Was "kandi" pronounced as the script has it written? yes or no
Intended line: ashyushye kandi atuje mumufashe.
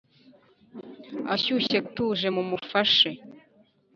no